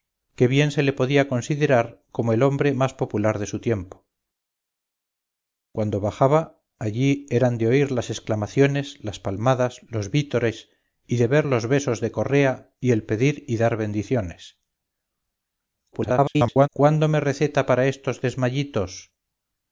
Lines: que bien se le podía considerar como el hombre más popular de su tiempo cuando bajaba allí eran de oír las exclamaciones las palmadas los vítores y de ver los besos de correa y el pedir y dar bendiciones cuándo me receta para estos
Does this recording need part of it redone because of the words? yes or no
yes